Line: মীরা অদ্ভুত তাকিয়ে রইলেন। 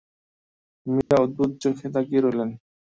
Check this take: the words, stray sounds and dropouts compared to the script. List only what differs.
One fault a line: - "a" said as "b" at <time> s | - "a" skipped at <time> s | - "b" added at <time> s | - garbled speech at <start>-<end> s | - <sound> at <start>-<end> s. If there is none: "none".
- dropout at 1.0-1.1 s
- "চোখে" added at 1.6 s